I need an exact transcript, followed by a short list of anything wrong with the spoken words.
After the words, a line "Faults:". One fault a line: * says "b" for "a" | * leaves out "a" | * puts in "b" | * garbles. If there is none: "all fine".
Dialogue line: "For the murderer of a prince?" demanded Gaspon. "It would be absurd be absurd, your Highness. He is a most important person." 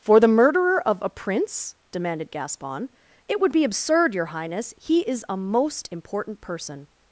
"For the murderer of a prince?" demanded Gaspon. "It would be absurd, your Highness. He is a most important person."
Faults:
* leaves out "be absurd"